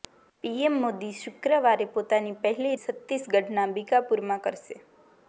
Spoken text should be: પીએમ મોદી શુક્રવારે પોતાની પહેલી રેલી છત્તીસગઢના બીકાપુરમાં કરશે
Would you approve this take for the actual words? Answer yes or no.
no